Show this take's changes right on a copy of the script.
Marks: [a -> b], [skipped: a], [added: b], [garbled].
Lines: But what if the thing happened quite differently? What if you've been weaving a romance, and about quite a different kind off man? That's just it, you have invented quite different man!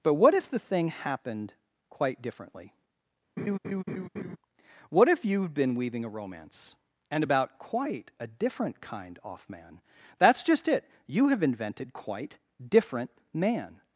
But what if the thing happened quite differently? What if you've been weaving a romance, and about quite a different kind off man? That's just it, you have invented quite different man!